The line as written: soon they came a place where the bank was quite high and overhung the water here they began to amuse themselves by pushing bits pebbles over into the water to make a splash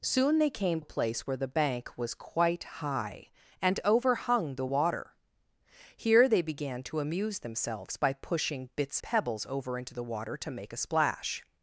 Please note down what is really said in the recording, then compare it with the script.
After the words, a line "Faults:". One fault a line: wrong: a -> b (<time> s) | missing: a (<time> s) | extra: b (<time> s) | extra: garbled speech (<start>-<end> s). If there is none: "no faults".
soon they came a place where the bank was quite high and overhung the water here they began to amuse themselves by pushing bits pebbles over into the water to make a splash
Faults:
no faults